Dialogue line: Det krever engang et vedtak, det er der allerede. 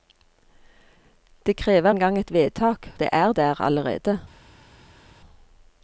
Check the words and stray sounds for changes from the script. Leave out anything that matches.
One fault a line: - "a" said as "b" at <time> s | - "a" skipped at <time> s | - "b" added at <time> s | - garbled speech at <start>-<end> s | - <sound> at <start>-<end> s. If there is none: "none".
none